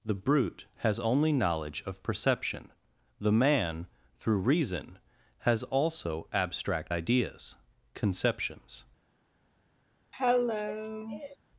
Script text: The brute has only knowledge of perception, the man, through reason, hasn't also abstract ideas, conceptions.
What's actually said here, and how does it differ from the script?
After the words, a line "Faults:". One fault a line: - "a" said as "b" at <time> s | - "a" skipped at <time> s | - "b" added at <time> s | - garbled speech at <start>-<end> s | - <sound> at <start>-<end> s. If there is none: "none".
The brute has only knowledge of perception, the man, through reason, has also abstract ideas, conceptions.
Faults:
- "hasn't" said as "has" at 5.4 s
- cough at 10.1-11.4 s